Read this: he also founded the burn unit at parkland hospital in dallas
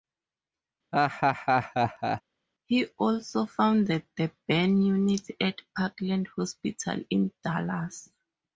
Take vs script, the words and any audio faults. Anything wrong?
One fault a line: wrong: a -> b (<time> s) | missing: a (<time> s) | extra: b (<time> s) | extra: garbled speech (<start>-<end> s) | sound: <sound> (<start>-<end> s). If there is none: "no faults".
sound: laugh (0.9-2.2 s)